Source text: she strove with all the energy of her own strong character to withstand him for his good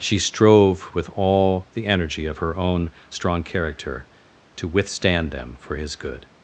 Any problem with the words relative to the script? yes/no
yes